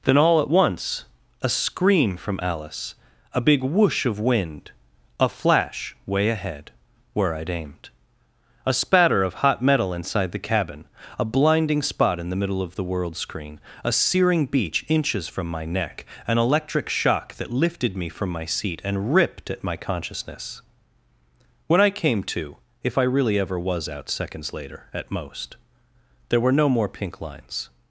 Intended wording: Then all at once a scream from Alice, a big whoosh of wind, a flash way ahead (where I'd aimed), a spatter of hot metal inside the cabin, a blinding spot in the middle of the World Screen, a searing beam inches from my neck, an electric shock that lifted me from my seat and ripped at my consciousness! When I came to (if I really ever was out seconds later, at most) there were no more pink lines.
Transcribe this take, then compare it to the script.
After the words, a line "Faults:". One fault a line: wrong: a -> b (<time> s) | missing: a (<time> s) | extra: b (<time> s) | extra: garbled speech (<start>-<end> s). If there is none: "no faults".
Then all at once a scream from Alice, a big whoosh of wind, a flash way ahead (where I'd aimed), a spatter of hot metal inside the cabin, a blinding spot in the middle of the World Screen, a searing beach inches from my neck, an electric shock that lifted me from my seat and ripped at my consciousness! When I came to (if I really ever was out seconds later, at most) there were no more pink lines.
Faults:
wrong: beam -> beach (14.5 s)